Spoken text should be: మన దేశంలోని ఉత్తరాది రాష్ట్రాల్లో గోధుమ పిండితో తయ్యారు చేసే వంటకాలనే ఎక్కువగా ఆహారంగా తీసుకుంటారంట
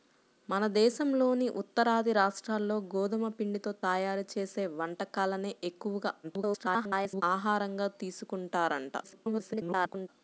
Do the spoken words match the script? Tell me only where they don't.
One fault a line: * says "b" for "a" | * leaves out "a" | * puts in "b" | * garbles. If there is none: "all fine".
* garbles
* garbles